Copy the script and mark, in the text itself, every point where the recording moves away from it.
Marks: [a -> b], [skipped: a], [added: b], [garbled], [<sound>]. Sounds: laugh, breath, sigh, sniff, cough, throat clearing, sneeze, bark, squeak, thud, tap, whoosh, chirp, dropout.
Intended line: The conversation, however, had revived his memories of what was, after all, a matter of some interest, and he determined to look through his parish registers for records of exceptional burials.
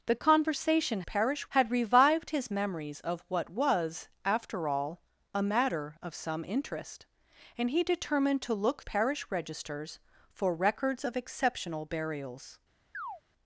The conversation, [however, -> parish] had revived his memories of what was, after all, a matter of some interest, and he determined to look [skipped: through his] parish registers for records of exceptional burials. [chirp]